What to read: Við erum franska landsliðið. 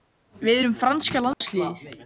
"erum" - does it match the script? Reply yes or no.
yes